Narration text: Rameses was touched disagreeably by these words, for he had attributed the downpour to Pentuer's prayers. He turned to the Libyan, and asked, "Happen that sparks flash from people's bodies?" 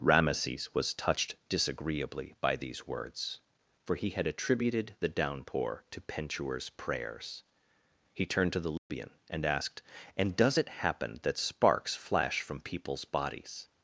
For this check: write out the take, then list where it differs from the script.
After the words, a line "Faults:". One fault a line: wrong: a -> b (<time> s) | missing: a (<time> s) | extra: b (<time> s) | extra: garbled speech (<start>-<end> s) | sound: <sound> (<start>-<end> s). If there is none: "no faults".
Rameses was touched disagreeably by these words, for he had attributed the downpour to Pentuer's prayers. He turned to the Libyan, and asked, "And does it happen that sparks flash from people's bodies?"
Faults:
sound: dropout (8.8-8.9 s)
extra: And does it (10.2 s)